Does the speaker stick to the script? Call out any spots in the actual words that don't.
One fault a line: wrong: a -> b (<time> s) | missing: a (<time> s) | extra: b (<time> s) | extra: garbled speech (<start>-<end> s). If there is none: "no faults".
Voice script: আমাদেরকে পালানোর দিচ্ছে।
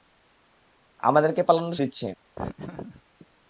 no faults